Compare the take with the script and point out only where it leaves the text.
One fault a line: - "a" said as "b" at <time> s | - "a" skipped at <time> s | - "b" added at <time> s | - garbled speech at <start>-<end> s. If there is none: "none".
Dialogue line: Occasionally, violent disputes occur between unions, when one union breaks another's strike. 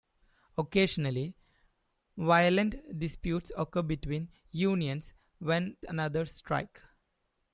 - "one union breaks" skipped at 5.8 s